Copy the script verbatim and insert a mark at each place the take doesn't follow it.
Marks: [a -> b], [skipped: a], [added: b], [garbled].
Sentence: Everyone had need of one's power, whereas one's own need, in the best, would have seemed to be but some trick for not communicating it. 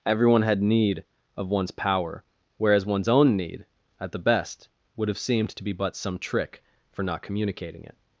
Everyone had need of one's power, whereas one's own need, [in -> at] the best, would have seemed to be but some trick for not communicating it.